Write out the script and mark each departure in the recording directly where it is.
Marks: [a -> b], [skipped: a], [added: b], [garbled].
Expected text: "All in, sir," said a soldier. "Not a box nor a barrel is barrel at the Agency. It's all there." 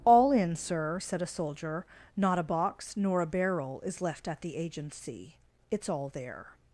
"All in, sir," said a soldier. "Not a box nor a barrel is [barrel -> left] at the Agency. It's all there."